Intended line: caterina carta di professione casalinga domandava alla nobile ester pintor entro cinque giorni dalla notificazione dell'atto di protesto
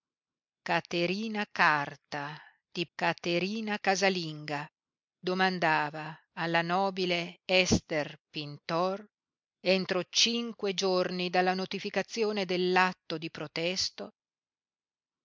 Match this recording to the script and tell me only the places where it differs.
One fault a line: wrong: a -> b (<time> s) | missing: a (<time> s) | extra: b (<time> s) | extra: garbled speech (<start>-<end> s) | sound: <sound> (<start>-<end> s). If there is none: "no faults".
wrong: professione -> caterina (3.0 s)